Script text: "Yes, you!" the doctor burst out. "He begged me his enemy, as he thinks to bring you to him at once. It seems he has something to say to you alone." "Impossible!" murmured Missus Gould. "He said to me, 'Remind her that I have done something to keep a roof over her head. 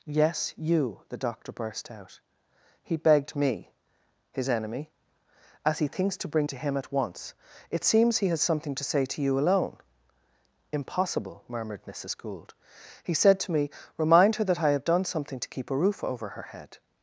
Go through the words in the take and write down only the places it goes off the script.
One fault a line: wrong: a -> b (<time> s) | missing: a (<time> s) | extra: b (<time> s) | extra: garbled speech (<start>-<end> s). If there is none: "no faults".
missing: you (6.5 s)